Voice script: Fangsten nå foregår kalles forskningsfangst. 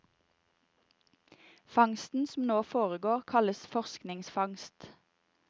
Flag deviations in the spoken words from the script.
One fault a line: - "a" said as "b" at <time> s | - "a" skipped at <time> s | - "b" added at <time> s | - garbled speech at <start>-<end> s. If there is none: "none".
- "som" added at 2.3 s